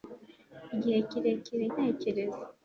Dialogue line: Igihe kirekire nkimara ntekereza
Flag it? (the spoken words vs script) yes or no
yes